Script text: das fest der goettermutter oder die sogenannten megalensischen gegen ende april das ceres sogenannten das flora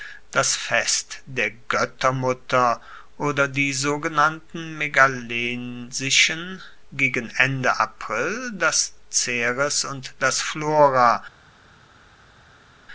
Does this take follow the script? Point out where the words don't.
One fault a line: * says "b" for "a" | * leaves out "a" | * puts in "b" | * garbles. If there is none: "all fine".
* says "und" for "sogenannten"